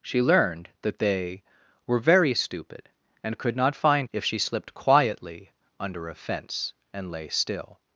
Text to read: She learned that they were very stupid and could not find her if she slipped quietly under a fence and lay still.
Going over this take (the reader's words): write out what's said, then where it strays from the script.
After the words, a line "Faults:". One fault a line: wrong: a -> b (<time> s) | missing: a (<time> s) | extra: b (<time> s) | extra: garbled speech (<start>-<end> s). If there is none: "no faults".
She learned that they were very stupid and could not find if she slipped quietly under a fence and lay still.
Faults:
missing: her (4.1 s)